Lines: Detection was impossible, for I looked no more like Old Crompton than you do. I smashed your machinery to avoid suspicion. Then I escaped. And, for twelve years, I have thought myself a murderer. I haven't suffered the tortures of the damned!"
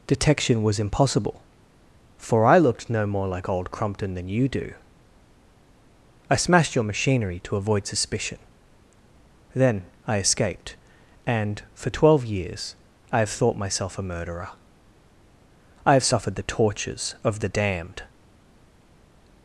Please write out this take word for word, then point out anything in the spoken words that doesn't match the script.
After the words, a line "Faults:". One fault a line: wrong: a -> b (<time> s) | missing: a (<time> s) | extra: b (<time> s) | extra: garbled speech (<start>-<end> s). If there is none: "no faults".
Detection was impossible, for I looked no more like Old Crompton than you do. I smashed your machinery to avoid suspicion. Then I escaped. And, for twelve years, I have thought myself a murderer. I have suffered the tortures of the damned!"
Faults:
wrong: haven't -> have (15.9 s)